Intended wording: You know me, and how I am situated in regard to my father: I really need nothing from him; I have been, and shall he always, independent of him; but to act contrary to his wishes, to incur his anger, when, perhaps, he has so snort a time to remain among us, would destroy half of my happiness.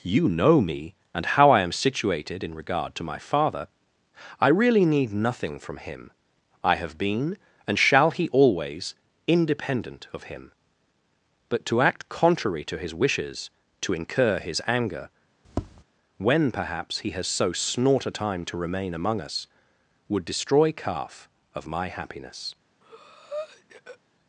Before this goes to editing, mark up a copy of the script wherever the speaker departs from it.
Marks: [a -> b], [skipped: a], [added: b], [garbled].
You know me, and how I am situated in regard to my father: I really need nothing from him; I have been, and shall he always, independent of him; but to act contrary to his wishes, to incur his anger, when, perhaps, he has so snort a time to remain among us, would destroy [half -> calf] of my happiness.